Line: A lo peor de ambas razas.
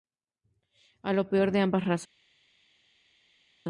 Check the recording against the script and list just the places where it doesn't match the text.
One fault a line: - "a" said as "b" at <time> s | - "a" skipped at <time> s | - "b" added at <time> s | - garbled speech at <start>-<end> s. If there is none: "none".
none